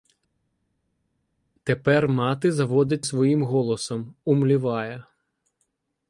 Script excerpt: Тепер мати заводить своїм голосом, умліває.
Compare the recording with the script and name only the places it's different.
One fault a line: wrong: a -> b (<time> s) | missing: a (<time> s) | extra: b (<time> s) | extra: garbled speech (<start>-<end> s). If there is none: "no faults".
no faults